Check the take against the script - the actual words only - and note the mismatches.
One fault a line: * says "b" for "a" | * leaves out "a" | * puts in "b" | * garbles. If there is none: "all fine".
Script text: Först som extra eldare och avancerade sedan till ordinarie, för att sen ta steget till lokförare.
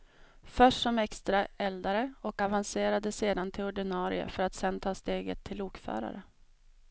all fine